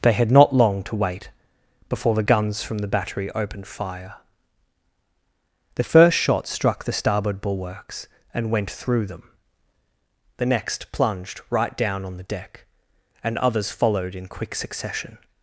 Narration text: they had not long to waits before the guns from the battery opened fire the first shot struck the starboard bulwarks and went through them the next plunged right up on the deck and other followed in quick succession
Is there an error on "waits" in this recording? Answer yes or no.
yes